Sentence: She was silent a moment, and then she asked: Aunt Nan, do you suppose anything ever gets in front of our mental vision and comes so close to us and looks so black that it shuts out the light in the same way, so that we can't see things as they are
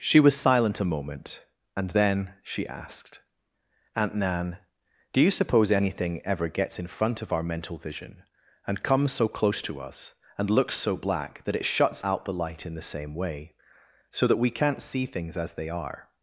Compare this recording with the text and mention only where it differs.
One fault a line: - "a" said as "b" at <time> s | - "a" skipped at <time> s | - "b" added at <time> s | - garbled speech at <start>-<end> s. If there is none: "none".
none